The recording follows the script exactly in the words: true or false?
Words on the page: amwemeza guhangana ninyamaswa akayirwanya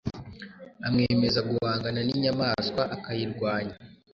true